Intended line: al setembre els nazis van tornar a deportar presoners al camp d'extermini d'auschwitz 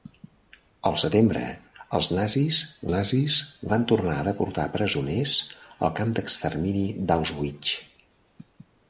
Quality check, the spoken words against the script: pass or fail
fail